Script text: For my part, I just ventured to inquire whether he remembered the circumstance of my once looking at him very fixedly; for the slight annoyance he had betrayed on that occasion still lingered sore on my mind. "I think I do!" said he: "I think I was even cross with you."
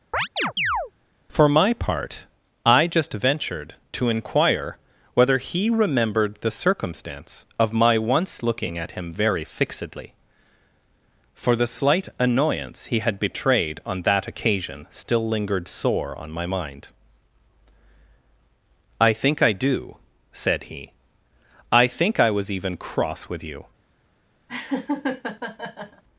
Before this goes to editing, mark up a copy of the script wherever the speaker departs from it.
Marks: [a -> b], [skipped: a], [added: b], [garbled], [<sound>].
[chirp] For my part, I just ventured to inquire whether he remembered the circumstance of my once looking at him very fixedly; for the slight annoyance he had betrayed on that occasion still lingered sore on my mind. "I think I do!" said he: "I think I was even cross with you." [laugh]